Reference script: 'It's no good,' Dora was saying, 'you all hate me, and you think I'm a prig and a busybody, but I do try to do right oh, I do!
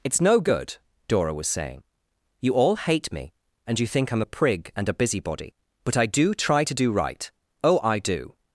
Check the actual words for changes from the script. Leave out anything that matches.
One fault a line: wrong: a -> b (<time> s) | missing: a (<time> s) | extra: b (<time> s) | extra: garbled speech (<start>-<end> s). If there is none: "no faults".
no faults